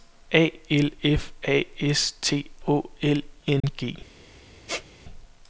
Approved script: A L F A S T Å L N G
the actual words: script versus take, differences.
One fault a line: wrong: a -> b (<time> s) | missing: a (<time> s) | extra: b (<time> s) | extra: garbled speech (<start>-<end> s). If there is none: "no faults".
no faults